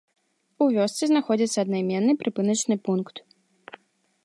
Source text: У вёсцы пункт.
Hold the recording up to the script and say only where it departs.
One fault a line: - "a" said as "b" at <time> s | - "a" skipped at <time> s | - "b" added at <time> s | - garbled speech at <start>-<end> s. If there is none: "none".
- "знаходзіцца аднайменны прыпыначны" added at 1.1 s